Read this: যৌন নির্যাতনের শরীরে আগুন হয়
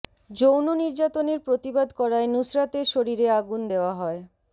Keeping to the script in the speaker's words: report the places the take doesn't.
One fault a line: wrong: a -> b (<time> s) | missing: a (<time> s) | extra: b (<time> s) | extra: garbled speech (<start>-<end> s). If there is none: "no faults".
extra: প্রতিবাদ করায় নুসরাতের (1.5 s)
extra: দেওয়া (3.7 s)